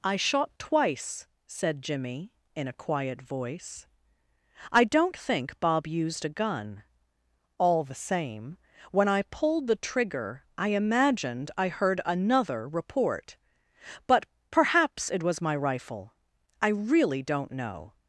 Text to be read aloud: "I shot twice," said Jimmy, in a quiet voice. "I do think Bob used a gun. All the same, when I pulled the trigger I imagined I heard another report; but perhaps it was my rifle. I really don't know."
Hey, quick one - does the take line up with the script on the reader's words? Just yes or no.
no